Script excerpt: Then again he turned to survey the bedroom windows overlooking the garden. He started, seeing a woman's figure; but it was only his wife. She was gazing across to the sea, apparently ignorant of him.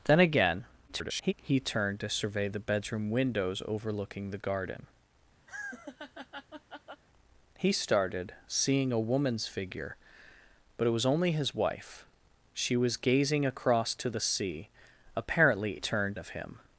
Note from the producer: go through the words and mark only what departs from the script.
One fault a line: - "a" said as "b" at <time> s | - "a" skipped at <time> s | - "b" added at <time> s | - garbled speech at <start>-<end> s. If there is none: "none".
- garbled speech at 0.9-1.3 s
- "ignorant" said as "turned" at 15.8 s